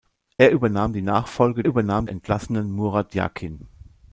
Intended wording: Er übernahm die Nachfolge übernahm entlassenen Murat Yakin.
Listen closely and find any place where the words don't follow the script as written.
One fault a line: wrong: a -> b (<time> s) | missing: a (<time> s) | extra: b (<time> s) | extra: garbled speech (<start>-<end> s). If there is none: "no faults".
no faults